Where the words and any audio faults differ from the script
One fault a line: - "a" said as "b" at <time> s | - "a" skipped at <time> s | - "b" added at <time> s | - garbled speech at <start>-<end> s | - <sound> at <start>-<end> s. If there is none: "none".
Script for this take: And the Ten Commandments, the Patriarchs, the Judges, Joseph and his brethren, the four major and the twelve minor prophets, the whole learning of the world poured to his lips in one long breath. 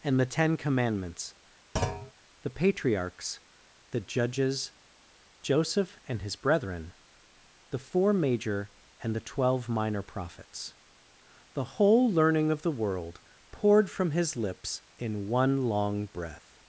- thud at 1.8-2.1 s
- "to" said as "from" at 13.9 s